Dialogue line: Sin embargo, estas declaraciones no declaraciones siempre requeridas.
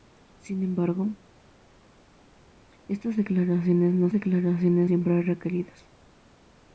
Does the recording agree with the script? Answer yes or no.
yes